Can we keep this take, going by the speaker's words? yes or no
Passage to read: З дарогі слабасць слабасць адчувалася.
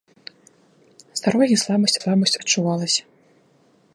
yes